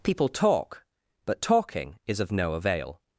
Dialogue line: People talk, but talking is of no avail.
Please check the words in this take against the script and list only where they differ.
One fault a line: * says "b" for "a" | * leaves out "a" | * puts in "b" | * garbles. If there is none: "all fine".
all fine